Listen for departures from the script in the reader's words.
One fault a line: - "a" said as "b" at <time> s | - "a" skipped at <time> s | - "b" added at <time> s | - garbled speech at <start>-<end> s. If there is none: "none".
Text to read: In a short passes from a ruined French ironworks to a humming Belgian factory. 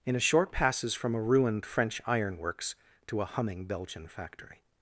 none